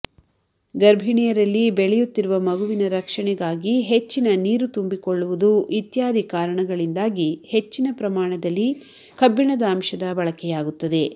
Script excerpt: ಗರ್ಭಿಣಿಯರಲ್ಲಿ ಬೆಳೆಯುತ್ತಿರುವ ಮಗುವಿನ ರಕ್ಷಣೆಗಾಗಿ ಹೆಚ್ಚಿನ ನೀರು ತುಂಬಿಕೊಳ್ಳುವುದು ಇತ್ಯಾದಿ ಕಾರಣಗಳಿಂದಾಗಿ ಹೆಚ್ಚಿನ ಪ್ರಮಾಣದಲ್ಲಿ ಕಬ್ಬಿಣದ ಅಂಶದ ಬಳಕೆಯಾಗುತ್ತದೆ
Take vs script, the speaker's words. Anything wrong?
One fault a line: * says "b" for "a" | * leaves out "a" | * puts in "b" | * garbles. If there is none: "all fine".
all fine